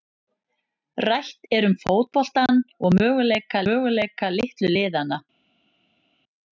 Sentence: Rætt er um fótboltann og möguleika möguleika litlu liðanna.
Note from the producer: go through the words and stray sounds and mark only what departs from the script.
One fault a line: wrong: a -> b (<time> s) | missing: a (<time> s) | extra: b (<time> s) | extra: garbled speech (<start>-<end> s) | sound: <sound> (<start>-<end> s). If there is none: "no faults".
no faults